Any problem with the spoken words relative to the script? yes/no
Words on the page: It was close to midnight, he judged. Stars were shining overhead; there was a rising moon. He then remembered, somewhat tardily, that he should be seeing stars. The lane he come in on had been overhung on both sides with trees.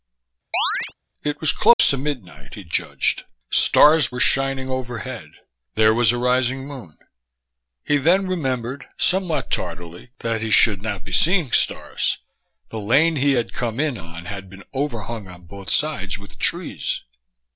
yes